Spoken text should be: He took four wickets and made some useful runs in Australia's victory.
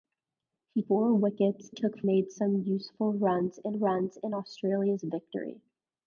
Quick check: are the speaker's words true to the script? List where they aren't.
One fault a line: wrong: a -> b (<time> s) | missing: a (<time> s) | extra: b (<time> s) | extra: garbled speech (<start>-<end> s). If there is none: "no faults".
missing: took (0.8 s)
wrong: and -> took (1.7 s)
extra: runs in (3.7 s)